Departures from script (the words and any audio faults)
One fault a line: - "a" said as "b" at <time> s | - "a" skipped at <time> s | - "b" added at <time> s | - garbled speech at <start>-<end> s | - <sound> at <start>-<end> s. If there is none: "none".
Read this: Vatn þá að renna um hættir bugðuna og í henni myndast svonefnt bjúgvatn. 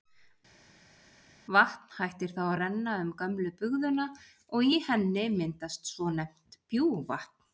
- "hættir" added at 2.0 s
- "hættir" said as "gömlu" at 3.2 s